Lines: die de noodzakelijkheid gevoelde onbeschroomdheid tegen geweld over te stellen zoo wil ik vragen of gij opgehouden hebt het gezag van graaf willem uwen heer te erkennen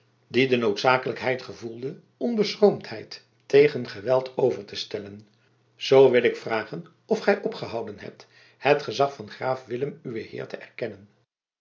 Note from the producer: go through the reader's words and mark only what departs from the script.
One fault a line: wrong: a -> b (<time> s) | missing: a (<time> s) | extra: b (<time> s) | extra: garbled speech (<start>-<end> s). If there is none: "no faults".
no faults